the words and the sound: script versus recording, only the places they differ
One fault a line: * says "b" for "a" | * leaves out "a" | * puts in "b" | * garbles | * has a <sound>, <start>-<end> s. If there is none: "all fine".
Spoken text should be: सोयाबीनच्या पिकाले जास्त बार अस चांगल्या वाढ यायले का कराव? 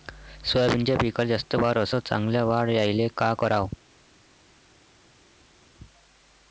all fine